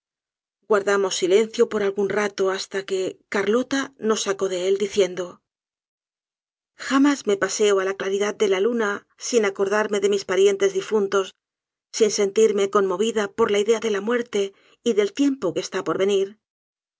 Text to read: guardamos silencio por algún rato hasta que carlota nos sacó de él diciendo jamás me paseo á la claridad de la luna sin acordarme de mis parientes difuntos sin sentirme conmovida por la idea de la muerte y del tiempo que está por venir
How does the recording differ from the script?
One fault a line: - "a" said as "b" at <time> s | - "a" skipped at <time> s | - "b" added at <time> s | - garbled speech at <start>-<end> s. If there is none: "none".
none